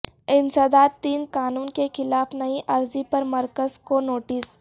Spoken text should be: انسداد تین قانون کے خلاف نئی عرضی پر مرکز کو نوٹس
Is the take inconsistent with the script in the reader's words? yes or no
no